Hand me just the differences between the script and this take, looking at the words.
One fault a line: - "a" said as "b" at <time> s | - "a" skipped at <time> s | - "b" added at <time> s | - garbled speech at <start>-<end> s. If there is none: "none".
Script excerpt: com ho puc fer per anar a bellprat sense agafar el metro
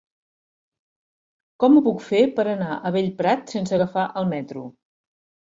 none